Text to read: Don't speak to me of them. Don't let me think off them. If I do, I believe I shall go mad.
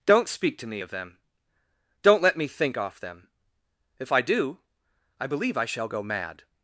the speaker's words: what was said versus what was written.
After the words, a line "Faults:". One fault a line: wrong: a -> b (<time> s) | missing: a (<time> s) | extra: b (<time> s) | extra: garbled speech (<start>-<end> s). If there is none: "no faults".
Don't speak to me of them. Don't let me think off them. If I do, I believe I shall go mad.
Faults:
no faults